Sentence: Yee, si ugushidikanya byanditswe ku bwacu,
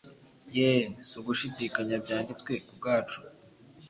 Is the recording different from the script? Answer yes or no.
no